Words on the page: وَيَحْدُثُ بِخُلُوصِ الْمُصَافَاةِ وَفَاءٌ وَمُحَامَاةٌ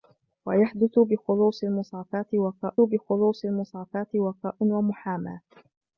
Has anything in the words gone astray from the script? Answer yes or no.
yes